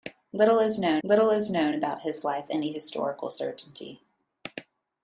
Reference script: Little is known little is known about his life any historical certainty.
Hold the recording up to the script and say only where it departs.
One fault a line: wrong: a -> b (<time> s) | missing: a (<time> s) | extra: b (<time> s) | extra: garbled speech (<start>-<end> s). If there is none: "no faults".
no faults